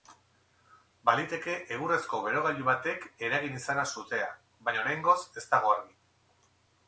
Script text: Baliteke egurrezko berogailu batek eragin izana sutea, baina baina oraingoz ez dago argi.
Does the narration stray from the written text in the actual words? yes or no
yes